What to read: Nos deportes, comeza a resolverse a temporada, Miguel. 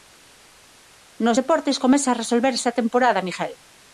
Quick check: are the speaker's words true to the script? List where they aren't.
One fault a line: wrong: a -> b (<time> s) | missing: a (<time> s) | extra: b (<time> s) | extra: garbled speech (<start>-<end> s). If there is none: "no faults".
no faults